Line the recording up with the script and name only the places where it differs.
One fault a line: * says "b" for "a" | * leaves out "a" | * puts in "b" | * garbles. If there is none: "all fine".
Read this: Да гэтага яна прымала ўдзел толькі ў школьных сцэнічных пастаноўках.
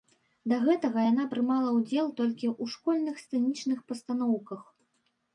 all fine